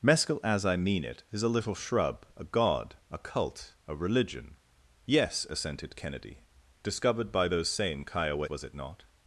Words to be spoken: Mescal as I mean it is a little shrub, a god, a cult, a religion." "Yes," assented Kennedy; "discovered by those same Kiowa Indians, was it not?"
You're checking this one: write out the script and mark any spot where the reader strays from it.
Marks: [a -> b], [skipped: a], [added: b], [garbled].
Mescal as I mean it is a little shrub, a god, a cult, a religion." "Yes," assented Kennedy; "discovered by those same Kiowa [skipped: Indians,] was it not?"